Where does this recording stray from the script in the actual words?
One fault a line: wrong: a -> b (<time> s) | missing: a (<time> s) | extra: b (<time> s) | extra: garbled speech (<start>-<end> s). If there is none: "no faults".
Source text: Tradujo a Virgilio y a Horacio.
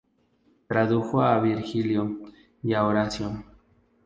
no faults